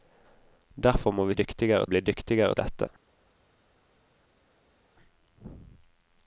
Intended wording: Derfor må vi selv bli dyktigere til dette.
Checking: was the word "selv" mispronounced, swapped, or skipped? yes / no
yes